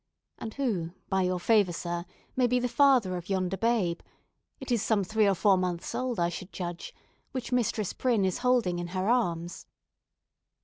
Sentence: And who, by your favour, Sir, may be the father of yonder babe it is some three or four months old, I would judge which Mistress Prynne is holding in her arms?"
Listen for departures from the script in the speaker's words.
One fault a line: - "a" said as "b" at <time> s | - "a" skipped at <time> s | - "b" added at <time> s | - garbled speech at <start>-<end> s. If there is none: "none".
- "would" said as "should" at 6.3 s